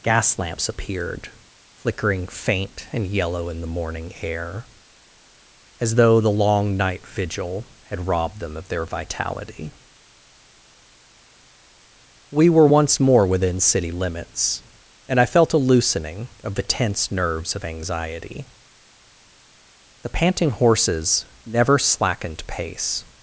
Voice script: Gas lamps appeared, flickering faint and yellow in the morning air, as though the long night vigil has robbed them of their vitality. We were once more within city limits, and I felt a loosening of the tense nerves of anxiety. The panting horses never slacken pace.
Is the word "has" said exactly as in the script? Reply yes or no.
no